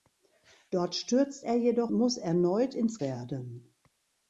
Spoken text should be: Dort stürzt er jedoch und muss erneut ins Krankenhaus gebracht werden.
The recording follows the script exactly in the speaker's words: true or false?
false